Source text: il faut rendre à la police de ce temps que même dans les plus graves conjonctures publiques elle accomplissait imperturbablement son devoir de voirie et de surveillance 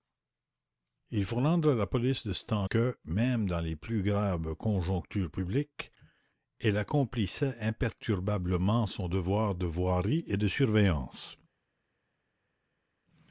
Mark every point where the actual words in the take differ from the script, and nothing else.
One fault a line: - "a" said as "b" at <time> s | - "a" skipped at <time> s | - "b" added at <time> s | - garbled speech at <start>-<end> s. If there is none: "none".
none